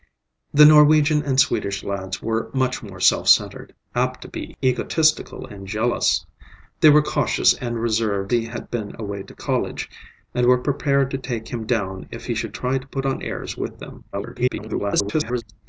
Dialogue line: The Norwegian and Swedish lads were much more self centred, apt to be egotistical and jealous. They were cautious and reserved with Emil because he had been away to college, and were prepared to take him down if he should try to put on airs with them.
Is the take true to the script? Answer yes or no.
no